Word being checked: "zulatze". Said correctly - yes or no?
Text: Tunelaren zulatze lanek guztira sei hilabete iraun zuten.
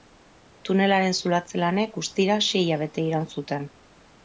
yes